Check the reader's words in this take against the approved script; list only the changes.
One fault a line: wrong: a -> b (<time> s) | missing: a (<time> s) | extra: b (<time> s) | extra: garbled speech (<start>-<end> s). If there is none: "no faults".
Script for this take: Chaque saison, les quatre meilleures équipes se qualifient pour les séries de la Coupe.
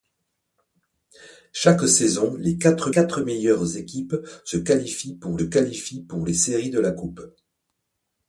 extra: quatre (2.9 s)
extra: qualifient pour (5.4 s)